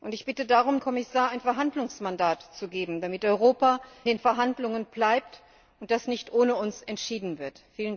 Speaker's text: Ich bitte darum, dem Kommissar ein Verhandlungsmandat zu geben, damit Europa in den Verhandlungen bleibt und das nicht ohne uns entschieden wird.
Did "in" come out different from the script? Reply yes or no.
yes